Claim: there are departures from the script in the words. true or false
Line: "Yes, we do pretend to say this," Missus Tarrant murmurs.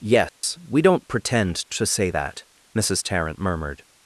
true